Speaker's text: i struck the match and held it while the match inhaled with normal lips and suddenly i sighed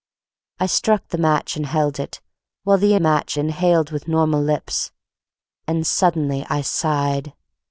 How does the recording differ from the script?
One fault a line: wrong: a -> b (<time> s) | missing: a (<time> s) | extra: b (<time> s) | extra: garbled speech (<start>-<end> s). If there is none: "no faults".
no faults